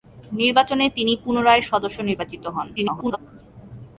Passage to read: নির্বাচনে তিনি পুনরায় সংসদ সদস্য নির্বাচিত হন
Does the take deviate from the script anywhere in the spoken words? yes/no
yes